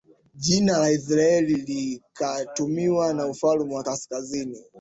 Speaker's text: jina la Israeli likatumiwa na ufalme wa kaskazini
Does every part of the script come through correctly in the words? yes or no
yes